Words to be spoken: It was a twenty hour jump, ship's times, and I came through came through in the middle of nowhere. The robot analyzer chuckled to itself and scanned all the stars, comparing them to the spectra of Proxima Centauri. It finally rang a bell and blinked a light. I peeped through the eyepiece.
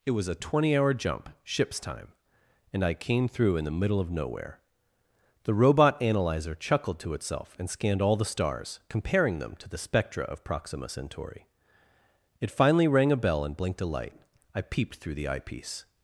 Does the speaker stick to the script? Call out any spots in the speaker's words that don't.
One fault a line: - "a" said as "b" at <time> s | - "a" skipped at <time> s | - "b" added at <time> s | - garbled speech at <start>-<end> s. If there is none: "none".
- "times" said as "time" at 1.8 s
- "came through" skipped at 3.5 s